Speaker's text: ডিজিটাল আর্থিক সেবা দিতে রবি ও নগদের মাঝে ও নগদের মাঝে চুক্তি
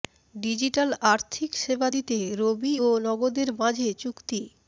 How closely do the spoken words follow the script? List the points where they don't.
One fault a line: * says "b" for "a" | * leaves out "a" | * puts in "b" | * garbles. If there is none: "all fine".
* leaves out "ও নগদের মাঝে"